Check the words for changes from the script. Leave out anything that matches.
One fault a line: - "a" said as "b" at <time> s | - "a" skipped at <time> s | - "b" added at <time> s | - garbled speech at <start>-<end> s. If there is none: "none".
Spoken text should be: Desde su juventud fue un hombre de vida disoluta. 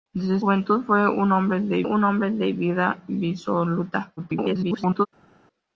- "su" skipped at 0.4 s
- "un hombre de" added at 1.8 s
- garbled speech at 4.2-5.1 s